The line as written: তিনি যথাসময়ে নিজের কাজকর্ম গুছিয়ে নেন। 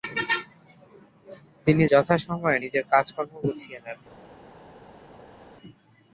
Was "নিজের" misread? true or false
false